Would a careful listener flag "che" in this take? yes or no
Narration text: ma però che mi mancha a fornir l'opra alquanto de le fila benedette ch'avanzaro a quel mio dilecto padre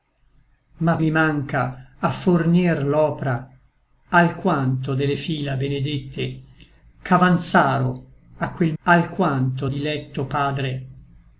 yes